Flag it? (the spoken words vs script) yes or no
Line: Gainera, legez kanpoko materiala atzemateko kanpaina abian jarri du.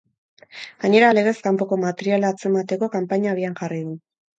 no